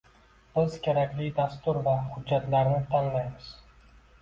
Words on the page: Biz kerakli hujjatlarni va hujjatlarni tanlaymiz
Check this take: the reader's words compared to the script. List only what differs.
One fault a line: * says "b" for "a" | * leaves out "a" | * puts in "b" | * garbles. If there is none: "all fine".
* says "dastur" for "hujjatlarni"